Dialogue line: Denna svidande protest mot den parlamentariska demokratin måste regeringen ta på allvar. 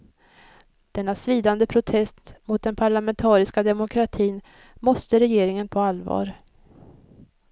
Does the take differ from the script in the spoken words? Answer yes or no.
yes